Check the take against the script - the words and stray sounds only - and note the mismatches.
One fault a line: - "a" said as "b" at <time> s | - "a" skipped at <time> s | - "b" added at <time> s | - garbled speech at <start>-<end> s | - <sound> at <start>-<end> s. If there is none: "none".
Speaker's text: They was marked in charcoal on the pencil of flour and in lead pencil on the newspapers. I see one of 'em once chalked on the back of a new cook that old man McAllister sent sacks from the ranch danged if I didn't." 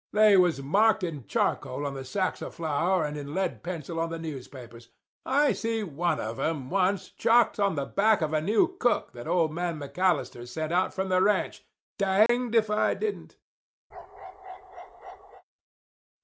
- "pencil" said as "sacks" at 2.0 s
- "sacks" said as "out" at 10.7 s
- dropout at 12.3-12.3 s
- bark at 13.9-15.4 s